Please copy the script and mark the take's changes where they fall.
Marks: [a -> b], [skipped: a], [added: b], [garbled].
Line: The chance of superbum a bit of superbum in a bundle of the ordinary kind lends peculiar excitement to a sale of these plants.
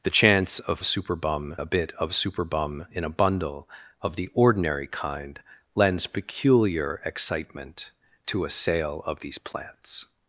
The chance of superbum a bit of superbum in a bundle of the ordinary kind lends peculiar excitement to a sale of these plants.